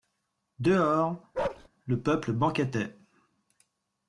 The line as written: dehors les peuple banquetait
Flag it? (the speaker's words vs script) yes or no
yes